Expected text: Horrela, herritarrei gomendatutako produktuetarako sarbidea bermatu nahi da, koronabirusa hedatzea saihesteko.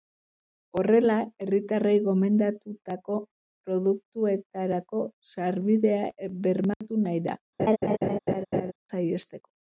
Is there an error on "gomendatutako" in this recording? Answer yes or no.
no